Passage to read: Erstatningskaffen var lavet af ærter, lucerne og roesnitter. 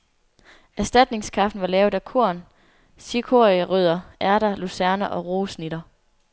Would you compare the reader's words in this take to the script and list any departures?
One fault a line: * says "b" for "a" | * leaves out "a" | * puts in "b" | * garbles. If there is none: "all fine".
* puts in "korn cikorierødder"